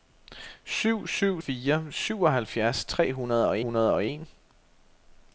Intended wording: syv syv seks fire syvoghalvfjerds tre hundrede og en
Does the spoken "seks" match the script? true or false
false